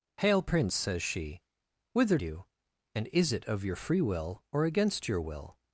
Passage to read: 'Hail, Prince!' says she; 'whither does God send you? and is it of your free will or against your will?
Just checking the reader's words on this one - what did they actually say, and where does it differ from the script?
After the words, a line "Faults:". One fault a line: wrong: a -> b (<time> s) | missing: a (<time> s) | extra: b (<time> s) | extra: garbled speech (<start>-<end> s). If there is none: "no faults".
'Hail, Prince!' says she; 'whither you? and is it of your free will or against your will?
Faults:
missing: does God send (2.2 s)